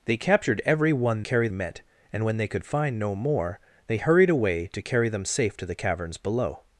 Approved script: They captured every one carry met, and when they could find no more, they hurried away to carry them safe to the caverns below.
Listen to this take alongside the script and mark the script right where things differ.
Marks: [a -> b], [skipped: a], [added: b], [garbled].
They captured every one carry met, and when they could find no more, they hurried away to carry them safe to the caverns below.